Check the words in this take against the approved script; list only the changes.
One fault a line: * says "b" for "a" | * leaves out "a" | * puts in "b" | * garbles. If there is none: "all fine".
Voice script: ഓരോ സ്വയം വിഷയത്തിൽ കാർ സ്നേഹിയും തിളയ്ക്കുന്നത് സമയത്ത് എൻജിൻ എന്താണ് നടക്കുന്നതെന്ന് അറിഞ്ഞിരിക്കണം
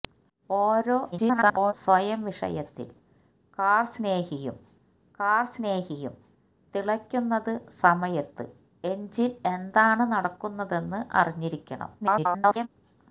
* garbles
* puts in "കാർ സ്നേഹിയും"
* garbles